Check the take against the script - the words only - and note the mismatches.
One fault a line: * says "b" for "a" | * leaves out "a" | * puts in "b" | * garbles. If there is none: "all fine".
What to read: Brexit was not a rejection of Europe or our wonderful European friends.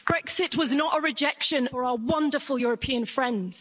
* leaves out "of Europe"